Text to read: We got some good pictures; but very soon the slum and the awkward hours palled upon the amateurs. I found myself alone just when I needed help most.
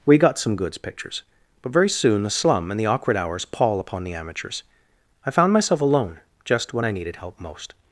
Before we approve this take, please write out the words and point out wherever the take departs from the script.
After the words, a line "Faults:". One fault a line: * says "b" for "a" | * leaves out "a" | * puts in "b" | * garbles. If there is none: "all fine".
We got some goods pictures; but very soon the slum and the awkward hours pall upon the amateurs. I found myself alone just when I needed help most.
Faults:
* says "goods" for "good"
* says "pall" for "palled"